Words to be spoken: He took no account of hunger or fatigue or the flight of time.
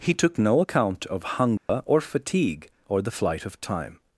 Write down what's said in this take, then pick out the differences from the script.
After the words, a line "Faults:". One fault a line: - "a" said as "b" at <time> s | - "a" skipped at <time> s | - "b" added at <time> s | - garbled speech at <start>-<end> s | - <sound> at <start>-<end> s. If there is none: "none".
He took no account of hunger or fatigue or the flight of time.
Faults:
- dropout at 1.6-1.7 s